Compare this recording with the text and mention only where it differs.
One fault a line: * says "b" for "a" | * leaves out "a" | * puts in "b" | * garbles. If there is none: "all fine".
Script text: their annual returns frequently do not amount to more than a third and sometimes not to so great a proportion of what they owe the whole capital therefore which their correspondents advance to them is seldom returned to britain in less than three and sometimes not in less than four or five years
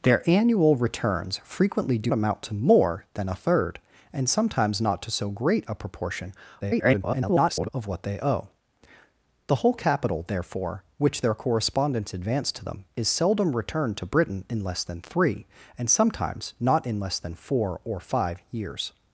* leaves out "not"
* garbles